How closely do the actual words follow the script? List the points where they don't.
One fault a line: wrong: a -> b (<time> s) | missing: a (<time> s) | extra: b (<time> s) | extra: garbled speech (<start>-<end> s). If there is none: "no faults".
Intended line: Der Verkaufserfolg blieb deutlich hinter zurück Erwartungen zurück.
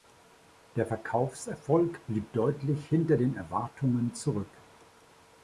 wrong: zurück -> den (3.2 s)